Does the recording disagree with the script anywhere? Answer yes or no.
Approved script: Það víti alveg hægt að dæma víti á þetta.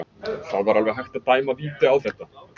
yes